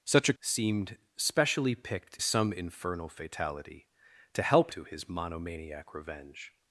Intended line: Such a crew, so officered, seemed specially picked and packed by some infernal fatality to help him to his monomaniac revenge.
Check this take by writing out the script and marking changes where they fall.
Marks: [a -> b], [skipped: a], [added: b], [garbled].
Such a [skipped: crew, so officered,] seemed specially picked [skipped: and packed by] some infernal fatality to help [skipped: him] to his monomaniac revenge.